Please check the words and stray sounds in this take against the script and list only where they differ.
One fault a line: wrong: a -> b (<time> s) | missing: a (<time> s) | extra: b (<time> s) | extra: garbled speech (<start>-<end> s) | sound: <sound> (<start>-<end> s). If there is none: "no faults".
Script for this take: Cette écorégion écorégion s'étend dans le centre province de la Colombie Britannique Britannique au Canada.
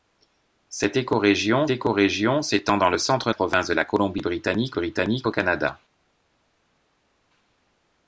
no faults